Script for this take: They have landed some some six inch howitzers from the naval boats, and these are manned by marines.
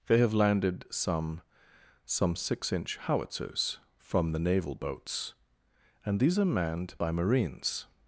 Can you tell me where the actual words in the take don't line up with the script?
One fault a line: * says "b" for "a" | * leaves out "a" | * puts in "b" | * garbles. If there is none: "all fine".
all fine